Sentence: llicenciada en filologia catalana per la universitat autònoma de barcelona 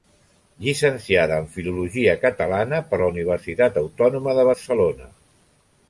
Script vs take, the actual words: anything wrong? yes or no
no